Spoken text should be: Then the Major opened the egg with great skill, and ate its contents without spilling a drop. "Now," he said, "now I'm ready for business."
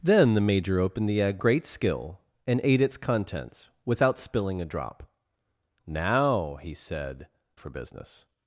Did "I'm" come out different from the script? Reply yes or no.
yes